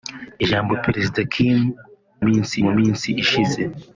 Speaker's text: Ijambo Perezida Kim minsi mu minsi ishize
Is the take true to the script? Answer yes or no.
yes